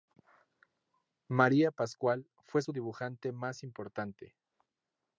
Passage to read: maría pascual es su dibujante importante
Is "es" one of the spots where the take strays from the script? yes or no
yes